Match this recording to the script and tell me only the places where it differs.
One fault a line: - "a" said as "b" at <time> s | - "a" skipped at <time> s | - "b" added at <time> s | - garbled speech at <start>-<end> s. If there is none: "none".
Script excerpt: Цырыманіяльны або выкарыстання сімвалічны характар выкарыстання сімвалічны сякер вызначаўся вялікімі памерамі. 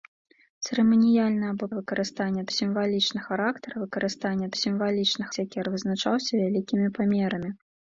none